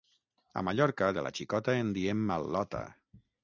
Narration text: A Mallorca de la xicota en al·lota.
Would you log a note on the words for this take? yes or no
yes